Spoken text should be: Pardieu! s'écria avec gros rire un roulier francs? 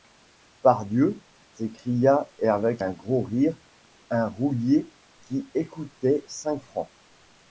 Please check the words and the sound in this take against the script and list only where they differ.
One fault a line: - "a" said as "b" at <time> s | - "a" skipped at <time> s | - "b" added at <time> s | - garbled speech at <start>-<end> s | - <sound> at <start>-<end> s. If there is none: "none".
- "un" added at 2.8 s
- "qui écoutait cinq" added at 5.3 s